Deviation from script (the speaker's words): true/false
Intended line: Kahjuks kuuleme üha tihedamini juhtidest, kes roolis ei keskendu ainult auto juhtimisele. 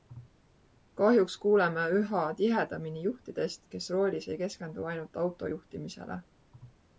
false